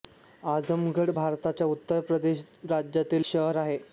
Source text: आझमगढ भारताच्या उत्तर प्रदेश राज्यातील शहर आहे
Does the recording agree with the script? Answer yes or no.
yes